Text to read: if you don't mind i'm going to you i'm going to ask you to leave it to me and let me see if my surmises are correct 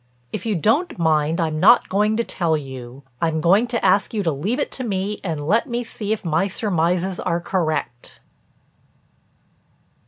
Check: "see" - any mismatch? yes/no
no